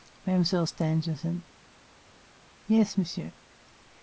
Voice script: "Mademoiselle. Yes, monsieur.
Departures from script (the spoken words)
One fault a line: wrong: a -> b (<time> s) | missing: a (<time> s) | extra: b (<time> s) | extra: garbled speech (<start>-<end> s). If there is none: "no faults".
extra: Stangerson (0.6 s)